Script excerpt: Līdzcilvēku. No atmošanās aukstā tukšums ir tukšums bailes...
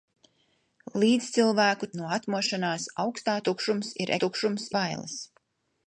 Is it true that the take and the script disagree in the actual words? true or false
false